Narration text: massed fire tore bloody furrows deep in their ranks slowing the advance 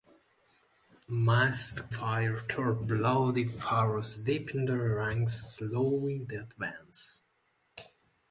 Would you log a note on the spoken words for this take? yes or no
no